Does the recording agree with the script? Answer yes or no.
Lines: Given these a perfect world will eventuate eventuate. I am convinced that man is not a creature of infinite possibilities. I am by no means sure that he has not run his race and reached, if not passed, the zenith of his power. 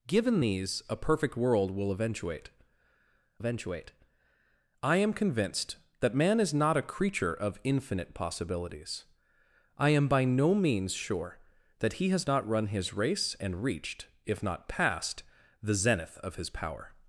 yes